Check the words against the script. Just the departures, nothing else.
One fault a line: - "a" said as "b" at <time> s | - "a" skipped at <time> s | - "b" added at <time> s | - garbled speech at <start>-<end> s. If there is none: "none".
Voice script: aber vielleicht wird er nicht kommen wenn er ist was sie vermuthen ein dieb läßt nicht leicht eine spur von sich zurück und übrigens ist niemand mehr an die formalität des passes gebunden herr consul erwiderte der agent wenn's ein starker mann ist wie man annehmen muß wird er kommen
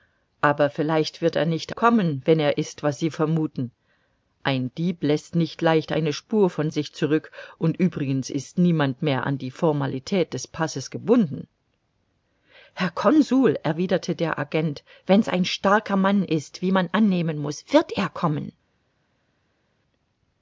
none